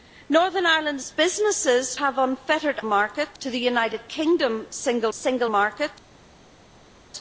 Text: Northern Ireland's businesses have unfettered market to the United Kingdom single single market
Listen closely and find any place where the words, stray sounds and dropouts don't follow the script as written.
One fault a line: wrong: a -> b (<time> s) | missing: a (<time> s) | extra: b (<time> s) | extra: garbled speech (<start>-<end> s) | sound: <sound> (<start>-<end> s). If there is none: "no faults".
no faults